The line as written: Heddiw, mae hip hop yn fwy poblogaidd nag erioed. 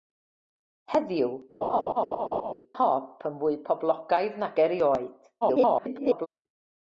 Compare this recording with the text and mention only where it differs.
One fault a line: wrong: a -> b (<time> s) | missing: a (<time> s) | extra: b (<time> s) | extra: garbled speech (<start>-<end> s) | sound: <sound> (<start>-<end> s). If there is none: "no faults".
missing: mae hip (1.4 s)
sound: laugh (1.6-2.5 s)
extra: garbled speech (5.4-6.3 s)